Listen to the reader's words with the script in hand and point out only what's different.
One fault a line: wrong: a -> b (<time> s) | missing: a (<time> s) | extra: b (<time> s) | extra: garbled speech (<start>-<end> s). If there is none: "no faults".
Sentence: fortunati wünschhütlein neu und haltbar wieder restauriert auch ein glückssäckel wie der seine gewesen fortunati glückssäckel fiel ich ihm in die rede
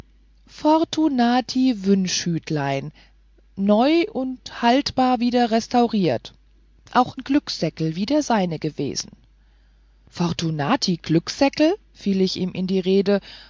missing: ein (7.2 s)